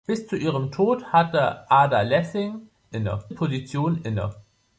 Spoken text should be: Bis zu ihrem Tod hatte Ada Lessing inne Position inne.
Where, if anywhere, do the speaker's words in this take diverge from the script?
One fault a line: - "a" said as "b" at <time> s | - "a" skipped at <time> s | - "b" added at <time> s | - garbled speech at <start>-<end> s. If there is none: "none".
none